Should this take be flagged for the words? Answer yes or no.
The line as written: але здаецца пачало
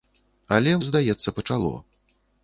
no